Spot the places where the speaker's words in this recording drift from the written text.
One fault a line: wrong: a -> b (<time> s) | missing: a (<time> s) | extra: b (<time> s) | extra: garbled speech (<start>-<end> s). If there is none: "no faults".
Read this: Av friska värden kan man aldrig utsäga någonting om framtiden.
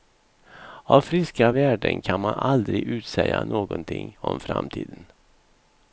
no faults